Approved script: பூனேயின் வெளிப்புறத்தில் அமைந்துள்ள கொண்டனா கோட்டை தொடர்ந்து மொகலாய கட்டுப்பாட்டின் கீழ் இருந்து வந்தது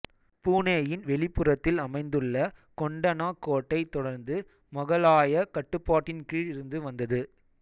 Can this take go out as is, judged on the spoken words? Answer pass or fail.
pass